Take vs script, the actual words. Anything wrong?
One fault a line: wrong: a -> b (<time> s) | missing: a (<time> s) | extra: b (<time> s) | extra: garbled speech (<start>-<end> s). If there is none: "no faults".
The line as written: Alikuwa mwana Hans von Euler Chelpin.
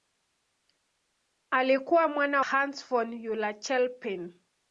no faults